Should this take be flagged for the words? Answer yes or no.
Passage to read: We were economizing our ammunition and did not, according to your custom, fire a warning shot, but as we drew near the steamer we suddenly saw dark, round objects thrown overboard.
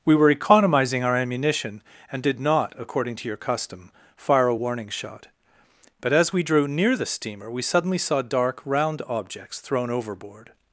no